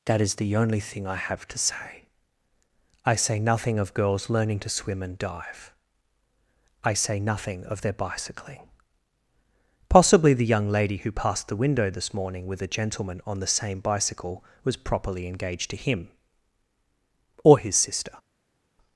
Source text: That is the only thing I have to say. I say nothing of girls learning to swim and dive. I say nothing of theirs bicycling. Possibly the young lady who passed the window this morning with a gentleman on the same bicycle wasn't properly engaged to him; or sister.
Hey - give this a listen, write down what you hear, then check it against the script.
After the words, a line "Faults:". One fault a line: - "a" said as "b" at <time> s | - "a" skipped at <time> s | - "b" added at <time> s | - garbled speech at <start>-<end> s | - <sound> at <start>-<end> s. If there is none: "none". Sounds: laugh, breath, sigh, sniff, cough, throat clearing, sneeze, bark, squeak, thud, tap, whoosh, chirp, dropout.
That is the only thing I have to say. I say nothing of girls learning to swim and dive. I say nothing of their bicycling. Possibly the young lady who passed the window this morning with a gentleman on the same bicycle was properly engaged to him; or his sister.
Faults:
- "theirs" said as "their" at 7.8 s
- "wasn't" said as "was" at 14.6 s
- "his" added at 17.6 s